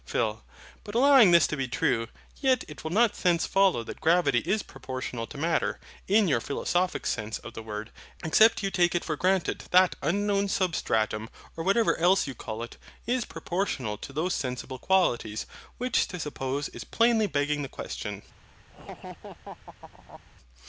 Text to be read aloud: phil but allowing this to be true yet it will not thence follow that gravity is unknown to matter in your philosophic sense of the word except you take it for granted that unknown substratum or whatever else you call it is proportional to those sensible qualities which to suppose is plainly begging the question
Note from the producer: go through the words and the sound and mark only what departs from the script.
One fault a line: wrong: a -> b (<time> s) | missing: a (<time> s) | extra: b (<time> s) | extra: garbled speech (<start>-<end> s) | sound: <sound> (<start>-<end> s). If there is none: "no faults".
wrong: unknown -> proportional (4.6 s)
sound: laugh (18.7-20.2 s)